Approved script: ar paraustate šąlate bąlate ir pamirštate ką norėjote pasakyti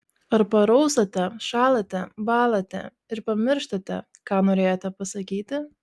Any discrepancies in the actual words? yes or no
no